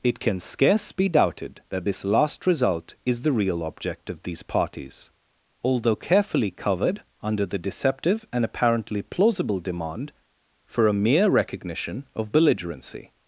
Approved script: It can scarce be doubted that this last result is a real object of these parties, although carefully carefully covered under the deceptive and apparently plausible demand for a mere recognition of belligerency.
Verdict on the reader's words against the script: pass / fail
fail